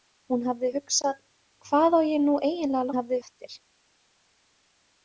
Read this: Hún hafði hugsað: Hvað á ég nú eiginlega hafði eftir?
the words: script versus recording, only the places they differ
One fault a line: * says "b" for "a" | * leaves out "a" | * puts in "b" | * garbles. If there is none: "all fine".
all fine